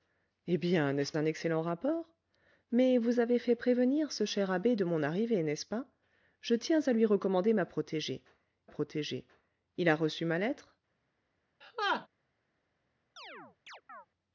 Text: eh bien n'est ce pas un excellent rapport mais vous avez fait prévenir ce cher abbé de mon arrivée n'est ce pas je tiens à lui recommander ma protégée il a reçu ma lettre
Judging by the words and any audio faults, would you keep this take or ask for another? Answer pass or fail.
fail